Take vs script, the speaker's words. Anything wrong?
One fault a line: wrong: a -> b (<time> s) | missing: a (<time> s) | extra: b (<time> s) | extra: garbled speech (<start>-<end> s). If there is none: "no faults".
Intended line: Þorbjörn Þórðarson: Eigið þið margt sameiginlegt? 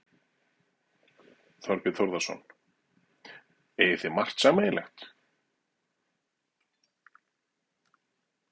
no faults